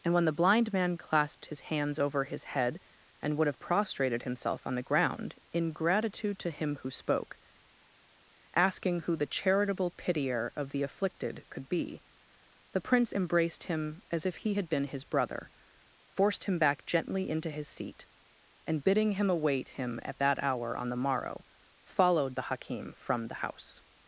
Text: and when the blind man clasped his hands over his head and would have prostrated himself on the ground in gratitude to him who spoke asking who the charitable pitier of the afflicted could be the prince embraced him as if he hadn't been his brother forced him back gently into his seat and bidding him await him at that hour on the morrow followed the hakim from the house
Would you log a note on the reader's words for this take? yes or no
yes